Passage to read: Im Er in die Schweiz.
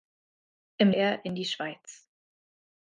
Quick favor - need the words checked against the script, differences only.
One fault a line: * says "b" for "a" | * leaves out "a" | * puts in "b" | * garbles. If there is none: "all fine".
all fine